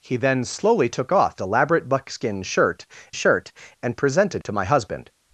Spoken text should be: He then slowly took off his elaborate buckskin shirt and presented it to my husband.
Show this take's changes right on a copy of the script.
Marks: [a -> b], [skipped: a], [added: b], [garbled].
He then slowly took off [skipped: his] elaborate buckskin shirt [added: shirt] and presented [skipped: it] to my husband.